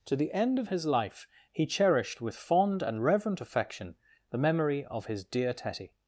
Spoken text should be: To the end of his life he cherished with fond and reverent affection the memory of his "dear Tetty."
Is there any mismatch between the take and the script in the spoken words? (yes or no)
no